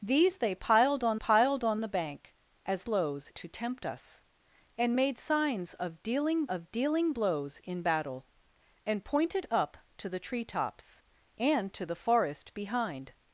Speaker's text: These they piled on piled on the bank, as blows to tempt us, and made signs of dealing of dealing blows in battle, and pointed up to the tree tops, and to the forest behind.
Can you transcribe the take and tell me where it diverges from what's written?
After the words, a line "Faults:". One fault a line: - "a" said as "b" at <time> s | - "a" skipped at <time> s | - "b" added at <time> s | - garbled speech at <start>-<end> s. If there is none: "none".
These they piled on piled on the bank, as blows to tempt us, and made signs of dealing of dealing blows in battle, and pointed up to the tree tops, and to the forest behind.
Faults:
none